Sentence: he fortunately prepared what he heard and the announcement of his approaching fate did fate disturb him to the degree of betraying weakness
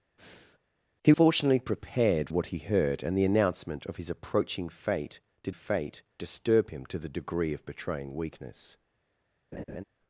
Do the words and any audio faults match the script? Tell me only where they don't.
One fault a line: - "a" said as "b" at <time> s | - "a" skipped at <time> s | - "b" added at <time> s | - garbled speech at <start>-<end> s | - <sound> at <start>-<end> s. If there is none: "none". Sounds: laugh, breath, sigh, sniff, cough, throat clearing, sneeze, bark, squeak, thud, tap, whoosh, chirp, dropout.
- breath at 0.2-0.6 s
- laugh at 9.5-9.8 s